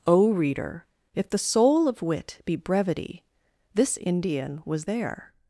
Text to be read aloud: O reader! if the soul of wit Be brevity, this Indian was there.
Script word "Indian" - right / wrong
right